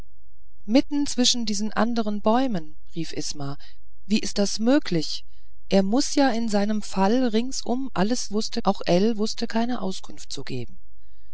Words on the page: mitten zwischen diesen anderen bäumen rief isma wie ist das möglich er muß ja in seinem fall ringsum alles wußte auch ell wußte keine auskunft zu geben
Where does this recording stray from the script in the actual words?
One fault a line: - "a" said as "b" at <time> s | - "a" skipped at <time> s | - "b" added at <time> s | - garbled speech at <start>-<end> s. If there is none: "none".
none